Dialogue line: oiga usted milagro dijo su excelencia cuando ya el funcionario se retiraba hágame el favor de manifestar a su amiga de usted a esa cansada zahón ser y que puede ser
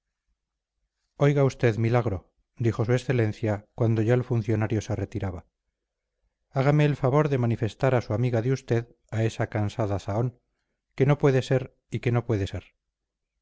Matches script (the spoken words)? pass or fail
fail